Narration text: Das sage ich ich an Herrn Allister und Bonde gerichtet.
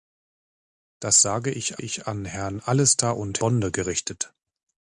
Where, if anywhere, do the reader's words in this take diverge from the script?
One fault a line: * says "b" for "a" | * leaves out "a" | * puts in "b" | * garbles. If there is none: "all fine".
all fine